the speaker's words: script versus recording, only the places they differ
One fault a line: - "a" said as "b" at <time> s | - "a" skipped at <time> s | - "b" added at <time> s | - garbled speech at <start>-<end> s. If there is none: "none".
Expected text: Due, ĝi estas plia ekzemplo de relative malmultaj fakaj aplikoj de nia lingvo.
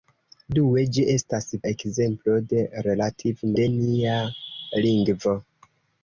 - "plia" skipped at 1.5 s
- "malmultaj fakaj aplikoj" skipped at 3.5 s